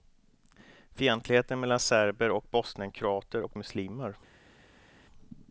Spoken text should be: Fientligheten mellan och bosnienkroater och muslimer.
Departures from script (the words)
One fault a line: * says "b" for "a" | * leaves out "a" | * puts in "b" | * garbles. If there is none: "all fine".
* puts in "serber"